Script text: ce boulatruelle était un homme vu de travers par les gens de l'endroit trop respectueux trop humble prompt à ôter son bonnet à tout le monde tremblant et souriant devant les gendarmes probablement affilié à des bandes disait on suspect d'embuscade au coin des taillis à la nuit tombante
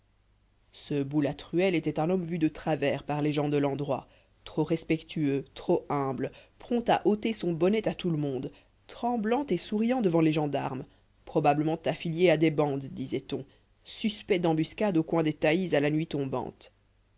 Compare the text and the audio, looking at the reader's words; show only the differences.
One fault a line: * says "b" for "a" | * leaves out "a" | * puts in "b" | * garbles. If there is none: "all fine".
all fine